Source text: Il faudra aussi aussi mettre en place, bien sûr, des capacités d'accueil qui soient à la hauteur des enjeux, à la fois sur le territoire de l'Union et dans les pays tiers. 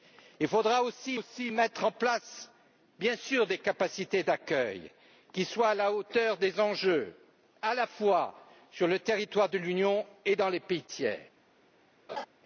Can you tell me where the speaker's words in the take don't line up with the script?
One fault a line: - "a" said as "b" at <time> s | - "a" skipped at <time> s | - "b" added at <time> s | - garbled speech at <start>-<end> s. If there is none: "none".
none